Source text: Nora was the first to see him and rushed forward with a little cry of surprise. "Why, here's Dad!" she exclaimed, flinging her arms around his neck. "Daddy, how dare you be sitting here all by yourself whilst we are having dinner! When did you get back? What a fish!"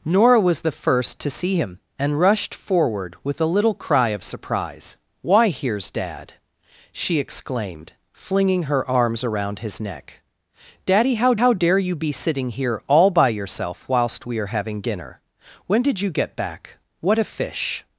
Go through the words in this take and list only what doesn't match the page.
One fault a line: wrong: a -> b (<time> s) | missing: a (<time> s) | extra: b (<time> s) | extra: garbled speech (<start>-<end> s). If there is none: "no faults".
extra: how (11.3 s)